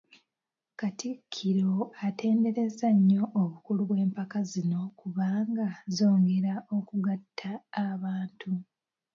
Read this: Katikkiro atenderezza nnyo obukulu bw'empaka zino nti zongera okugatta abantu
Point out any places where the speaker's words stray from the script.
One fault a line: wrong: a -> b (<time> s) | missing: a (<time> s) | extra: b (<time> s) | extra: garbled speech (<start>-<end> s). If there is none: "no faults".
wrong: nti -> kubanga (5.0 s)